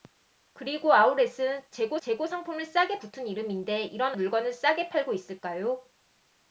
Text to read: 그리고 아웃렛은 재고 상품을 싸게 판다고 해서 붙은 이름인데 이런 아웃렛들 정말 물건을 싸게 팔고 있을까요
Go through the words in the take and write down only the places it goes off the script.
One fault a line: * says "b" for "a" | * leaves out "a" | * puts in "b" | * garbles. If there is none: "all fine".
* puts in "재고"
* leaves out "판다고 해서"
* leaves out "아웃렛들 정말"